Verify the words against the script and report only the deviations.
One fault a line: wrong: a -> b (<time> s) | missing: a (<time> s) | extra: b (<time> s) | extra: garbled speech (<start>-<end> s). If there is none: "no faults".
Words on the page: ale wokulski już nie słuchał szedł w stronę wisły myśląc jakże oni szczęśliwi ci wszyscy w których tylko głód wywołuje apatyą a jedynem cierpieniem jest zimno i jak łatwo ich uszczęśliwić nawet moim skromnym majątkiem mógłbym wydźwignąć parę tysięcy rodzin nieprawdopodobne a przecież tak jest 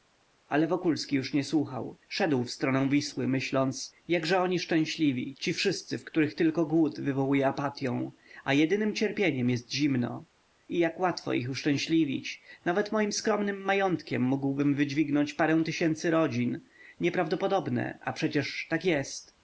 no faults